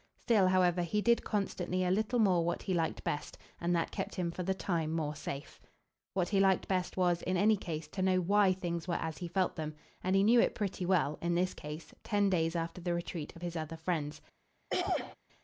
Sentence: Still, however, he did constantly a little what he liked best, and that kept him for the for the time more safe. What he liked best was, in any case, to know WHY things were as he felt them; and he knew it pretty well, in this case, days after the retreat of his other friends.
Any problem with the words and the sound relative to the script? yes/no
yes